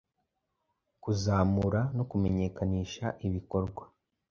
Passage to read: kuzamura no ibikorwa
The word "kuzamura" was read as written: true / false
true